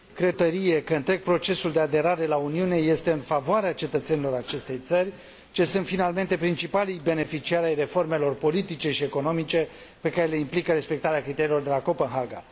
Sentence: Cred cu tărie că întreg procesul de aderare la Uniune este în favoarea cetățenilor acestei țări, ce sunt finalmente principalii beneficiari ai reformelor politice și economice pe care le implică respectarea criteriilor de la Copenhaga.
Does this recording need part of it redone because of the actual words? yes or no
yes